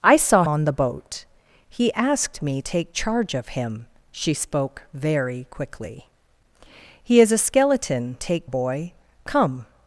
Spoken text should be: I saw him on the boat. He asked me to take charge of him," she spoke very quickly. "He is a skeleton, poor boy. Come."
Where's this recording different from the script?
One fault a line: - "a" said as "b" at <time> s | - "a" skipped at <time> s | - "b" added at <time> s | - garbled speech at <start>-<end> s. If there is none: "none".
- "him" skipped at 0.5 s
- "to" skipped at 2.6 s
- "poor" said as "take" at 8.2 s